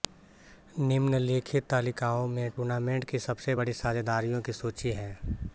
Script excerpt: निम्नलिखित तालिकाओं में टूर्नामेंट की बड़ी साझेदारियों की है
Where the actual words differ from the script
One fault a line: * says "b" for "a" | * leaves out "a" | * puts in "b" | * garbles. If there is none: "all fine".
* puts in "सबसे"
* puts in "सूची"